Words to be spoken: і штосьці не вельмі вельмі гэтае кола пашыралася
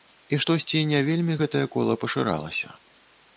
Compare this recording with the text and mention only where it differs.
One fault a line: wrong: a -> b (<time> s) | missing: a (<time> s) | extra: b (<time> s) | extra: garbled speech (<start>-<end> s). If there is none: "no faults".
missing: вельмі (1.4 s)